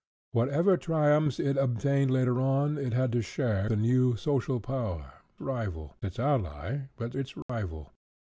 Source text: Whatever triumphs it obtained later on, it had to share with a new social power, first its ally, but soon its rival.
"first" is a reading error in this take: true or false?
true